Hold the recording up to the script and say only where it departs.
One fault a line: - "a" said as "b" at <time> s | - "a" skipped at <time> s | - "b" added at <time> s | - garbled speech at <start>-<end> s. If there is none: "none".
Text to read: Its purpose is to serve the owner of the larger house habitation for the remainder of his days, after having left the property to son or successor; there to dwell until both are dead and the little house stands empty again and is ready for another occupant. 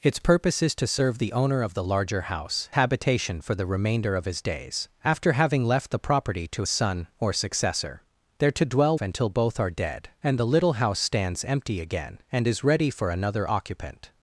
none